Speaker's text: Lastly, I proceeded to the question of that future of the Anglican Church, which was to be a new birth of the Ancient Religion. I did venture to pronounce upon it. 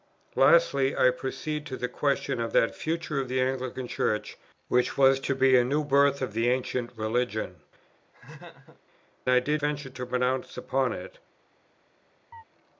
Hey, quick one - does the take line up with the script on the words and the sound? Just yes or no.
no